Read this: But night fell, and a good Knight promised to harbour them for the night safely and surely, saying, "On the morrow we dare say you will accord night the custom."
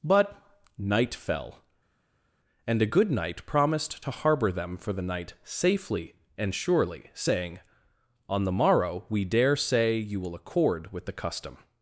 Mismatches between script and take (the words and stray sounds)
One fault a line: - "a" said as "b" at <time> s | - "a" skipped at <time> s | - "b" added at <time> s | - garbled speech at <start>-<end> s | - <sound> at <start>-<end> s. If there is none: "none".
- "night" said as "with" at 10.9 s